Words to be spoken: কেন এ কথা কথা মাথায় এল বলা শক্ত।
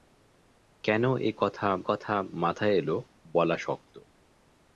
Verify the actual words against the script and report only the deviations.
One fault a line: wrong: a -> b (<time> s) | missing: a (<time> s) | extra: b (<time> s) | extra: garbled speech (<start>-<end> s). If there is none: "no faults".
no faults